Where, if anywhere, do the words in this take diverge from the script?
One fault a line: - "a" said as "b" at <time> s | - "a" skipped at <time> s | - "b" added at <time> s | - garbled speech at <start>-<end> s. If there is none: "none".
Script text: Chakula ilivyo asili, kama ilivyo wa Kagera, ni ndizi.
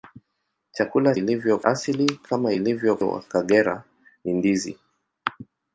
none